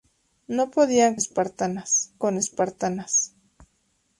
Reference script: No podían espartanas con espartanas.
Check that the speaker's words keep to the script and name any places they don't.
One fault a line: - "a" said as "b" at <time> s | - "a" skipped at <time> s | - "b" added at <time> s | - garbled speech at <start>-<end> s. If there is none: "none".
none